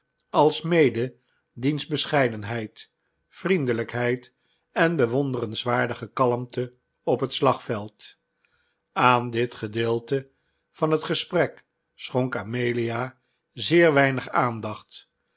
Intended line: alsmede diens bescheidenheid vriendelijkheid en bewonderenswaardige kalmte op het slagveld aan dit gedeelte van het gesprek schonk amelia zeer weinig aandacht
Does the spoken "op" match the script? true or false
true